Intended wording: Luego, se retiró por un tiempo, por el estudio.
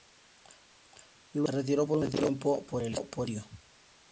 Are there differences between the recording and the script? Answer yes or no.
no